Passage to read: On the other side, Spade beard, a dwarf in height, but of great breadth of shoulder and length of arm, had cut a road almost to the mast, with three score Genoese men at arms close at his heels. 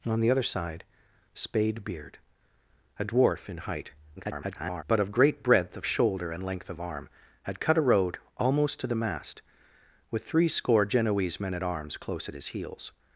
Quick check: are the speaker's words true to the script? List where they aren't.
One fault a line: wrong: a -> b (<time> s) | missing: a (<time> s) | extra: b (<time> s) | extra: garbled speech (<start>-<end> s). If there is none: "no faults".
extra: garbled speech (4.2-4.8 s)